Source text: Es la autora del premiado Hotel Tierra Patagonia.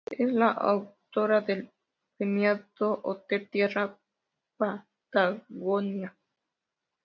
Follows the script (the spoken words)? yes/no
yes